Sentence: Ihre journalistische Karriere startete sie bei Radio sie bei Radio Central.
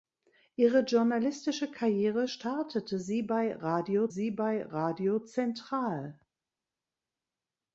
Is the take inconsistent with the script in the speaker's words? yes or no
no